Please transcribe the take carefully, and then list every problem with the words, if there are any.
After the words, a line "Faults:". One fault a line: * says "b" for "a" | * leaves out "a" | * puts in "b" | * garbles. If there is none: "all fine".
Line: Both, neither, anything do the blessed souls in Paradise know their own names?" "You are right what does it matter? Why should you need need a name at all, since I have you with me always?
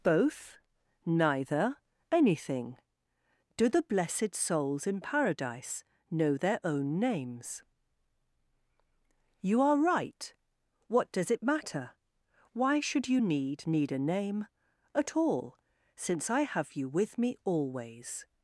Both, neither, anything do the blessed souls in Paradise know their own names?" "You are right what does it matter? Why should you need need a name at all, since I have you with me always?
Faults:
all fine